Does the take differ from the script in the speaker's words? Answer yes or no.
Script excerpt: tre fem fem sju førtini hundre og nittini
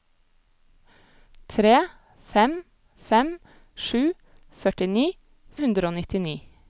no